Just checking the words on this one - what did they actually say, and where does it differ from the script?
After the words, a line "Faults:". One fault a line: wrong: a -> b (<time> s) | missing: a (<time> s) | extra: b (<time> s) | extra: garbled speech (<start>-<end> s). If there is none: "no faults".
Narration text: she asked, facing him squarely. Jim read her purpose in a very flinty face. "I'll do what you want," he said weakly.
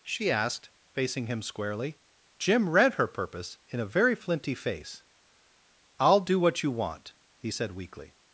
she asked, facing him squarely. Jim read her purpose in a very flinty face. "I'll do what you want," he said weakly.
Faults:
no faults